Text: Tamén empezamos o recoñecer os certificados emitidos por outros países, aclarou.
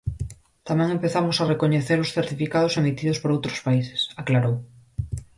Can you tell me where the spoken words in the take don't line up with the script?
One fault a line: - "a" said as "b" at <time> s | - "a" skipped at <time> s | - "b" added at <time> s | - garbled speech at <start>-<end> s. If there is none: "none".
- "o" said as "a" at 1.4 s